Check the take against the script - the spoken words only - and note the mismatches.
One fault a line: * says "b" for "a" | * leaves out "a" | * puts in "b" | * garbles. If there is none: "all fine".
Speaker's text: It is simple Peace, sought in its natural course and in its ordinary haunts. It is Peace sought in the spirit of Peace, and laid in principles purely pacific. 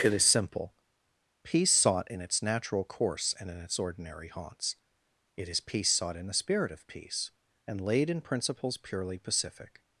all fine